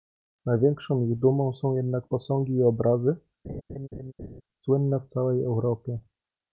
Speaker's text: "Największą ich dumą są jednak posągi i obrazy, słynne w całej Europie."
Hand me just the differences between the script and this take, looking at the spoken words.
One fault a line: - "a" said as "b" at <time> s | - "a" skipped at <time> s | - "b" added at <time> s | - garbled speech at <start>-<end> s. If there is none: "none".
none